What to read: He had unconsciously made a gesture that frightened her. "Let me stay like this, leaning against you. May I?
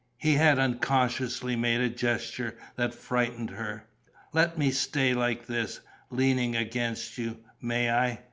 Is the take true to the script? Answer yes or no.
yes